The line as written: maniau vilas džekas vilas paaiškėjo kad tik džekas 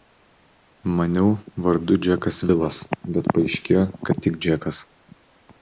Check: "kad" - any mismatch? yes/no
no